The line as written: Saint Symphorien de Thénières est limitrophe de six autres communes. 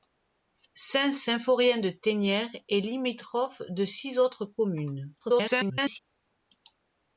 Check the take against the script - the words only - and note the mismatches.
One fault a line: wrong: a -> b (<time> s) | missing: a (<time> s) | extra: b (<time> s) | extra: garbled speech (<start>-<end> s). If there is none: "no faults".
extra: garbled speech (5.2-6.0 s)